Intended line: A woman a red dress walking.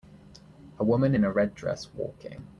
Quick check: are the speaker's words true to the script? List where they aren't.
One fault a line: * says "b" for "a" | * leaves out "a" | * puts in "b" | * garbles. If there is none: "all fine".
* puts in "in"